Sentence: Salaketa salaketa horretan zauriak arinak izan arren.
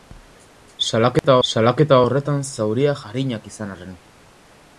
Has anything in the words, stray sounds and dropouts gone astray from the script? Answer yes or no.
yes